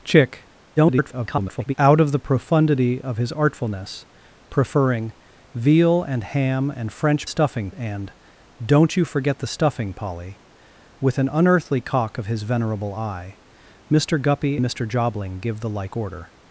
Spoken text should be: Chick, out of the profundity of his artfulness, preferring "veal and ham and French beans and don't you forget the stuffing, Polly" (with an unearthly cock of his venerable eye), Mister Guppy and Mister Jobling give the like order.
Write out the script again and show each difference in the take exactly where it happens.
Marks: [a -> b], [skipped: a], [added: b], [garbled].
Chick, [garbled] out of the profundity of his artfulness, preferring "veal and ham and French [beans -> stuffing] and don't you forget the stuffing, Polly" (with an unearthly cock of his venerable eye), Mister Guppy [skipped: and] Mister Jobling give the like order.